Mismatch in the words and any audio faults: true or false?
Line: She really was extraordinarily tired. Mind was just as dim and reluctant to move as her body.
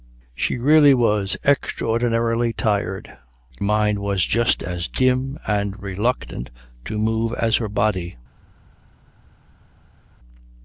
false